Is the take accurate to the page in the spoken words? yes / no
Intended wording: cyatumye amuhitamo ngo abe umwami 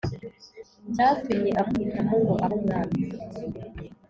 yes